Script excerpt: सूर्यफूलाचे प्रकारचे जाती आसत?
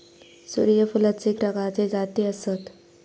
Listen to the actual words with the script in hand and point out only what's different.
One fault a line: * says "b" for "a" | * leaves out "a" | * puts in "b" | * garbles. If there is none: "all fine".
all fine